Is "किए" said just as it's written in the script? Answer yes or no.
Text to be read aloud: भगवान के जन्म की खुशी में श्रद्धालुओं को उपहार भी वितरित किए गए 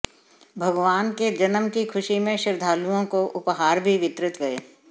no